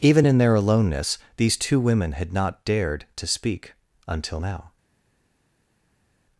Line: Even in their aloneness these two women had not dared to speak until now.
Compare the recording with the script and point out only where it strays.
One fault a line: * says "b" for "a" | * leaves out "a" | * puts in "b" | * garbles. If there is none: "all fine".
all fine